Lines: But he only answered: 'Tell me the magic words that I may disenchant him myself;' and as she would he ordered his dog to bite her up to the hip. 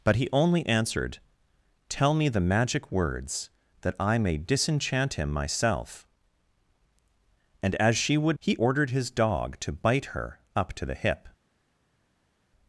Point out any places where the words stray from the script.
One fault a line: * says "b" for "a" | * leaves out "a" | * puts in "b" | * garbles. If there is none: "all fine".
all fine